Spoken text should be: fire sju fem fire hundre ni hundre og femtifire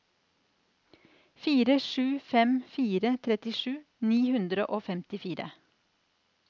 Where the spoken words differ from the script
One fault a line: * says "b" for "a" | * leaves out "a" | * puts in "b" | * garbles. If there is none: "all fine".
* says "trettisju" for "hundre"